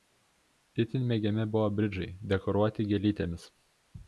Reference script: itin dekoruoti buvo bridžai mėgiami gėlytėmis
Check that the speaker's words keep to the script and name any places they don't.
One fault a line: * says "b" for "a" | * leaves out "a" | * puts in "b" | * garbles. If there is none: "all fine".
* says "mėgiami" for "dekoruoti"
* says "dekoruoti" for "mėgiami"